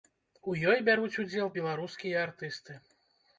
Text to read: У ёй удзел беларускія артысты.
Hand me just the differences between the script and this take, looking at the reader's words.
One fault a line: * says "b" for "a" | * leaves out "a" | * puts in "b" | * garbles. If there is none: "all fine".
* puts in "бяруць"